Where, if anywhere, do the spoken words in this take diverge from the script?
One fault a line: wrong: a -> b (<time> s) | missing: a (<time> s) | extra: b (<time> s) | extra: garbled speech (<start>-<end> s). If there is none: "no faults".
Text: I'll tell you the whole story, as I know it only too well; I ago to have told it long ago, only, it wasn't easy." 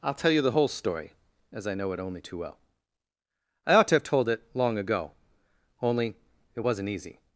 wrong: ago -> ought (3.8 s)